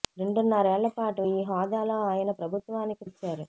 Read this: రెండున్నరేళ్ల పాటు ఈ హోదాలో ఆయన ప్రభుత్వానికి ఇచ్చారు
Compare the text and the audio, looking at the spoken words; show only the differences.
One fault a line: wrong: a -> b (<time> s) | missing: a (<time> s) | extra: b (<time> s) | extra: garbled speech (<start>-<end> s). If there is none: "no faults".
no faults